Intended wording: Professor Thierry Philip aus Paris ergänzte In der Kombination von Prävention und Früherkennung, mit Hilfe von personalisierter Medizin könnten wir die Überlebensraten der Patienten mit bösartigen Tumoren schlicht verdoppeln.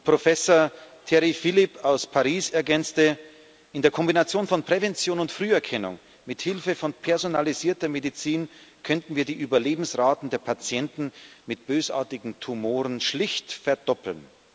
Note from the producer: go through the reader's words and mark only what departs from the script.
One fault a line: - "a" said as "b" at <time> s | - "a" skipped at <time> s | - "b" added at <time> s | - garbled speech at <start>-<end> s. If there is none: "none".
none